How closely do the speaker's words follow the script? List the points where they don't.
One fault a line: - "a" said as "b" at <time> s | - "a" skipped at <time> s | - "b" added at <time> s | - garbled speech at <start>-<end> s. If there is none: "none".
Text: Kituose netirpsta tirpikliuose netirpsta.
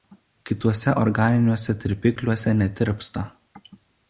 - "netirpsta" said as "organiniuose" at 1.0 s